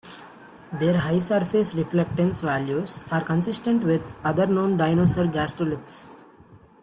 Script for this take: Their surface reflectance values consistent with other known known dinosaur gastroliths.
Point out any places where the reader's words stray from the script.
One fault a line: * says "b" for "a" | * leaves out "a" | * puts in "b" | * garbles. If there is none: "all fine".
* puts in "high"
* puts in "are"
* leaves out "known"